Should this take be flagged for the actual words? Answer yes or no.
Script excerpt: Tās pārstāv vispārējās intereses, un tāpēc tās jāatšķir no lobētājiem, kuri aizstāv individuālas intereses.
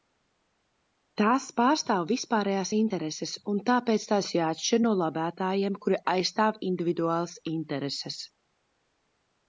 no